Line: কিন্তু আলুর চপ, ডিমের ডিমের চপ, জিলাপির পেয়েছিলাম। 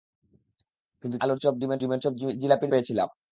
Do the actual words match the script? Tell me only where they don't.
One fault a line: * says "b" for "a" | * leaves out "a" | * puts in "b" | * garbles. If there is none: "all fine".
all fine